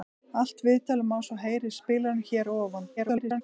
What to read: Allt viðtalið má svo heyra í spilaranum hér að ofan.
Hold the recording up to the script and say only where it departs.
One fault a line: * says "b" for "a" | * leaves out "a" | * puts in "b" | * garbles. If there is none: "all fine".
* garbles